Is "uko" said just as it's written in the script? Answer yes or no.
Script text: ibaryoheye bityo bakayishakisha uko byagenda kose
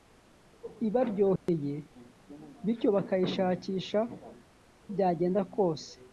no